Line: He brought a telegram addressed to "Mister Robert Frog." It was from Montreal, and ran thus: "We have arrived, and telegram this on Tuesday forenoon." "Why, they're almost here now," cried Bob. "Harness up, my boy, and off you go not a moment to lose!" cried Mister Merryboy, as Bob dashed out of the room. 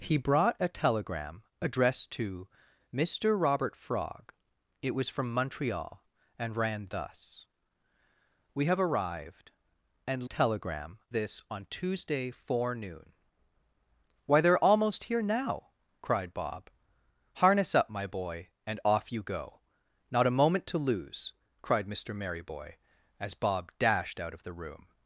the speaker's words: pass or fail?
pass